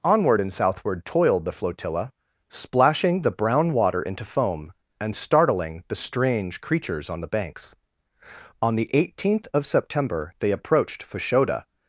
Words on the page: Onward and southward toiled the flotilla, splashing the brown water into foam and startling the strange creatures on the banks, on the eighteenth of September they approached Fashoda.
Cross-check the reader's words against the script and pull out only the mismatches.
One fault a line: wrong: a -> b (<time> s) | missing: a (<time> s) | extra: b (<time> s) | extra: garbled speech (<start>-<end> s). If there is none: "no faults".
no faults